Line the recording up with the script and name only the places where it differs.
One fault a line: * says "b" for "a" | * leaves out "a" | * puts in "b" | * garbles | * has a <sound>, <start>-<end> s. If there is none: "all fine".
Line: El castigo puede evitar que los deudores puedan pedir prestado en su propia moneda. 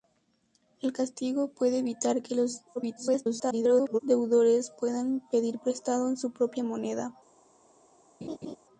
* garbles
* has a laugh, 8.2-8.6 s